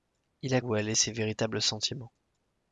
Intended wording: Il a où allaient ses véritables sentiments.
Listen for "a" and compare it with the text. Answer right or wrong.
right